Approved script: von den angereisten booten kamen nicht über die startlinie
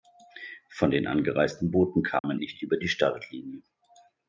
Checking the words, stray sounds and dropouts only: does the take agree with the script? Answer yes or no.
no